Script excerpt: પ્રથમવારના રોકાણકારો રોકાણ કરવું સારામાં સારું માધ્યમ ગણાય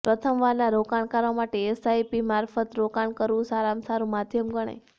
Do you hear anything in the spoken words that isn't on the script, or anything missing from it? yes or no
yes